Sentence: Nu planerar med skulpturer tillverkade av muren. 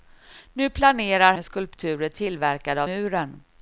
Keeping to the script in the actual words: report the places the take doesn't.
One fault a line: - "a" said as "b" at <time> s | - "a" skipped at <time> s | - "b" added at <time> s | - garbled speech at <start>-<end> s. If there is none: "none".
none